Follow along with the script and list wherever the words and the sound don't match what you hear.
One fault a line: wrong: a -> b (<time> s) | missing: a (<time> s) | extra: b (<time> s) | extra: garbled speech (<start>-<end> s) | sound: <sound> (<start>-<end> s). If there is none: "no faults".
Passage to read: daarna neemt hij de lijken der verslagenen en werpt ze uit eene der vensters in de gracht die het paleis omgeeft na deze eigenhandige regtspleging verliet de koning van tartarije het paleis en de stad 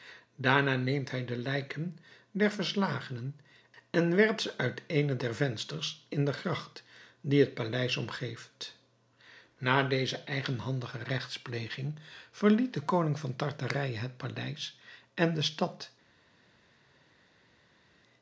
no faults